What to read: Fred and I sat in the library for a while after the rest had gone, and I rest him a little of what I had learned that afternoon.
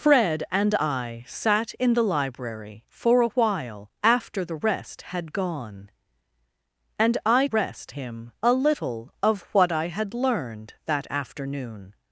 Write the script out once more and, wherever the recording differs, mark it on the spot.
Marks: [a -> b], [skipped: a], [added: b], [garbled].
Fred and I sat in the library for a while after the rest had gone, and I rest him a little of what I had learned that afternoon.